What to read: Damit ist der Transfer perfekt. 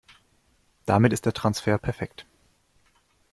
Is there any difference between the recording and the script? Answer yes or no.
no